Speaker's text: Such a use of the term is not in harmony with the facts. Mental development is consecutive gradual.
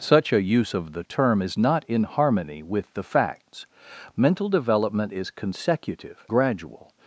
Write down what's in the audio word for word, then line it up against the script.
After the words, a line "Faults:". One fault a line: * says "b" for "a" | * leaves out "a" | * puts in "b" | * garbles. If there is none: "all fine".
Such a use of the term is not in harmony with the facts. Mental development is consecutive gradual.
Faults:
all fine